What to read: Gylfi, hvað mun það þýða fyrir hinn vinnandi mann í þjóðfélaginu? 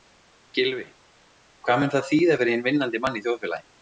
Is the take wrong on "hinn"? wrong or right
right